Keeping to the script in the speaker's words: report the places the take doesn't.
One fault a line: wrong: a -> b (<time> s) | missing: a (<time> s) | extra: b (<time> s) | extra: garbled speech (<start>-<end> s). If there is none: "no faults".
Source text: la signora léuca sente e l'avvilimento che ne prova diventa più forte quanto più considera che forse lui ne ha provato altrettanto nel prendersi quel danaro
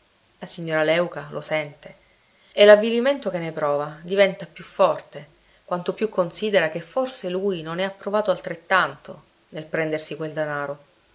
extra: lo (1.3 s)
extra: non (7.6 s)